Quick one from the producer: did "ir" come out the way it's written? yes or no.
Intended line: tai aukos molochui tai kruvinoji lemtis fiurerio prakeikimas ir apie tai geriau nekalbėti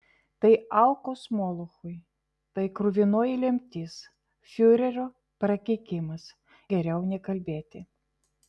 no